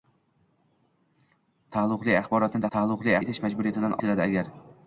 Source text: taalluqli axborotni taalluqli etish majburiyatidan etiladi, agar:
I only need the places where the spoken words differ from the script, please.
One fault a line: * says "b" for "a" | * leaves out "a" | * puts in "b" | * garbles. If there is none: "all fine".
all fine